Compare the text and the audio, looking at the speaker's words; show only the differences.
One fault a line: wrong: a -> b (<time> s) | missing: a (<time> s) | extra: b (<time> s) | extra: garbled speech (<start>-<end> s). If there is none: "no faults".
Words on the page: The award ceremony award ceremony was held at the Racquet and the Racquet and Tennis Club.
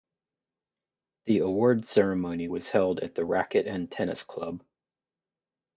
missing: award ceremony (2.5 s)
missing: the Racquet and (3.9 s)